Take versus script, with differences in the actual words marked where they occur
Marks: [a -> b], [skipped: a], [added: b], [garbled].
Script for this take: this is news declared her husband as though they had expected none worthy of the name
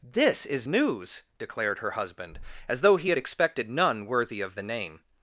this is news declared her husband as though [they -> he] had expected none worthy of the name